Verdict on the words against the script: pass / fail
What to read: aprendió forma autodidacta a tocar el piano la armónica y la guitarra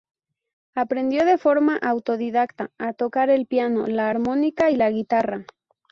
fail